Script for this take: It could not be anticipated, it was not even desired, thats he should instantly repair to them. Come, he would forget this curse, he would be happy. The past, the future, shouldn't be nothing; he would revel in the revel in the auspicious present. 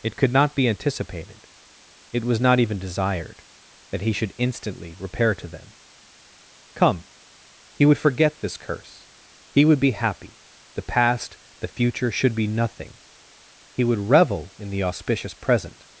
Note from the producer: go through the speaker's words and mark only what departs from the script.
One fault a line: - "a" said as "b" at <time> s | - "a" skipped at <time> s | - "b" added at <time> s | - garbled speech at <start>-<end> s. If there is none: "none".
- "thats" said as "that" at 3.9 s
- "shouldn't" said as "should" at 12.1 s
- "revel in the" skipped at 14.8 s